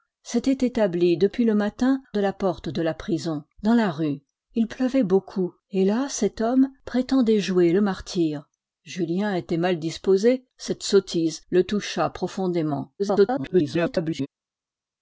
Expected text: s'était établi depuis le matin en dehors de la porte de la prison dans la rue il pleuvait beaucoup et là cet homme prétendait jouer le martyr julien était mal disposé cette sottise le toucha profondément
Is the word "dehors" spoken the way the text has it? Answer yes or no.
no